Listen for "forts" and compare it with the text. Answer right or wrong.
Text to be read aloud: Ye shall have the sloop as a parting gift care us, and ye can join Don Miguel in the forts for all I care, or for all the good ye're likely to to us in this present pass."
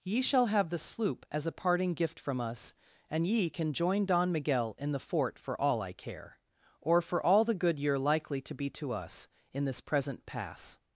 wrong